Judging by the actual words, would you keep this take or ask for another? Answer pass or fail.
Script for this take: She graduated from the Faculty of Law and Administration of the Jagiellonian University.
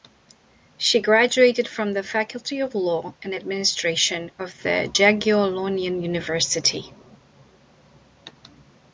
pass